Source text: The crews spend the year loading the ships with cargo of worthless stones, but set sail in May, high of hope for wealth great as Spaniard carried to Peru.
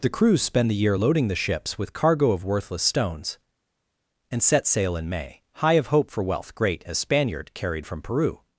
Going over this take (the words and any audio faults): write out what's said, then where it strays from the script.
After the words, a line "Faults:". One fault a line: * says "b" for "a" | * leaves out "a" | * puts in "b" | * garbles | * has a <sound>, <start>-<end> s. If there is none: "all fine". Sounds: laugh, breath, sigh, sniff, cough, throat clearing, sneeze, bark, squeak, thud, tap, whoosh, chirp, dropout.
The crews spend the year loading the ships with cargo of worthless stones, and set sail in May, high of hope for wealth great as Spaniard carried from Peru.
Faults:
* says "and" for "but"
* says "from" for "to"